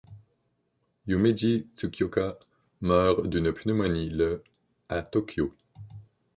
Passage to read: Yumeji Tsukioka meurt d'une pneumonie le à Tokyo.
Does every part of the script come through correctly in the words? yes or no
yes